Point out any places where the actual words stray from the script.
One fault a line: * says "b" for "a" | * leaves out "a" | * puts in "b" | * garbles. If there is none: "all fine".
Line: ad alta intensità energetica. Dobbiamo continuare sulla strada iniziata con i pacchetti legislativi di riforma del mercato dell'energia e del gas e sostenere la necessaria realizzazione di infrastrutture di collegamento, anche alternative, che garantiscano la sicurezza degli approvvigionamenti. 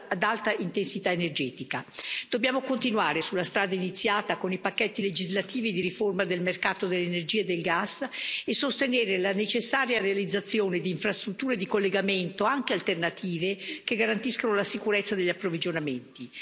all fine